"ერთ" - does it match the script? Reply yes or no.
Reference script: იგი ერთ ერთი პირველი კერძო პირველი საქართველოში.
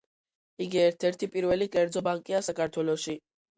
yes